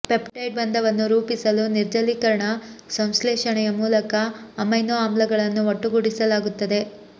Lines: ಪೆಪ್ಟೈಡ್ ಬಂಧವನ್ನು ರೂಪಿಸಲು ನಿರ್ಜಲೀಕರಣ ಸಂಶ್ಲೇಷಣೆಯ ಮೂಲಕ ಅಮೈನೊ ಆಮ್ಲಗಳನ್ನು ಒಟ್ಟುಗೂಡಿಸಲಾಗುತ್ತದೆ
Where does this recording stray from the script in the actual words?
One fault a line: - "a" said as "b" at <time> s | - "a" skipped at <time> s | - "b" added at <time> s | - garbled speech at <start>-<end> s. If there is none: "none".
none